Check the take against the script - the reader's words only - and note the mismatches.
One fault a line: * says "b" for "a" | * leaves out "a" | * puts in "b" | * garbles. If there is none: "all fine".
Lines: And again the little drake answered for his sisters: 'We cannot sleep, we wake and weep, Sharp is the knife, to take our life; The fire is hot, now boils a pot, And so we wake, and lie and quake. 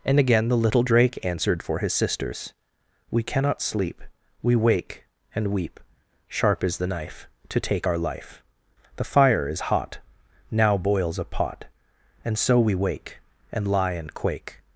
all fine